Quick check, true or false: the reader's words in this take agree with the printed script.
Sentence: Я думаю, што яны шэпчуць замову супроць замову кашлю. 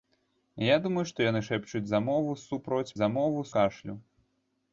true